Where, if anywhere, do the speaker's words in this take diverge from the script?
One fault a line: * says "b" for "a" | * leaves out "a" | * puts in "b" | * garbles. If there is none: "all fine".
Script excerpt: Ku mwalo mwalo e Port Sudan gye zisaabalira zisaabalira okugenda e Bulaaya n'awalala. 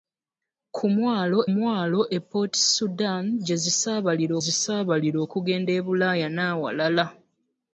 all fine